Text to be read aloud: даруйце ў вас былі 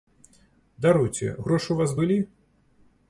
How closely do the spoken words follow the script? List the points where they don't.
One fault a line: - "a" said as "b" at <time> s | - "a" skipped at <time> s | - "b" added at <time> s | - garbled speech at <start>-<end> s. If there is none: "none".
- "грошы" added at 1.5 s